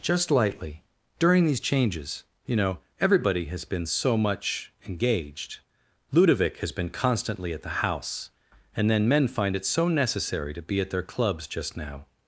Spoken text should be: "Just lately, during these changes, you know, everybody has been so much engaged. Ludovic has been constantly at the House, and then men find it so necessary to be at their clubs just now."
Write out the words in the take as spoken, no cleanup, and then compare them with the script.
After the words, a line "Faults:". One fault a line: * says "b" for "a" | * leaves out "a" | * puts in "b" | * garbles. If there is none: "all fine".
"Just lightly, during these changes, you know, everybody has been so much engaged. Ludovic has been constantly at the House, and then men find it so necessary to be at their clubs just now."
Faults:
* says "lightly" for "lately"